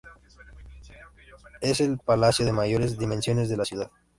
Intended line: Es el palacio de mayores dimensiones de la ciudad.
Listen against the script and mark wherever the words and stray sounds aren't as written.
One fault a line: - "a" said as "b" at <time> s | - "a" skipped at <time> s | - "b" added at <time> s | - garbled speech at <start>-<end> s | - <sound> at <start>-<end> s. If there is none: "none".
none